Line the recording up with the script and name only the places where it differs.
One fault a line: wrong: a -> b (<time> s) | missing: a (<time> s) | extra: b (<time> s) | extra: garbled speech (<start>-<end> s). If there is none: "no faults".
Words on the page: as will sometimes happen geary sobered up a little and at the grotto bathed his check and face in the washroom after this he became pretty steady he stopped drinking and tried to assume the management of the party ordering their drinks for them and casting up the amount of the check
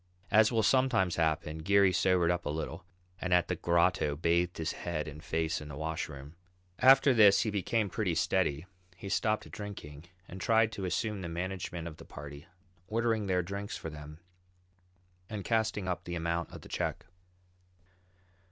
wrong: check -> head (4.7 s)